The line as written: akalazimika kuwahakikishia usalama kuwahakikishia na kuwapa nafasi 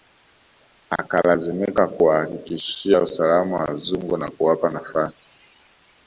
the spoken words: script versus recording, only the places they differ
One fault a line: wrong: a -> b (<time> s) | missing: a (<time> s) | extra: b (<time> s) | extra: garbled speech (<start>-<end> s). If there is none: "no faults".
wrong: kuwahakikishia -> wazungu (3.5 s)